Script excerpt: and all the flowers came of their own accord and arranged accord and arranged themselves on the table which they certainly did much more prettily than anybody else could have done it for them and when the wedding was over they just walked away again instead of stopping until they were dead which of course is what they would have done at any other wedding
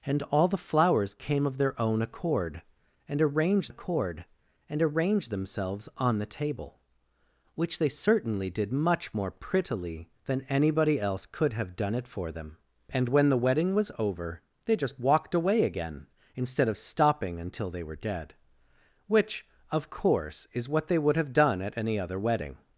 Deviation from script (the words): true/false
false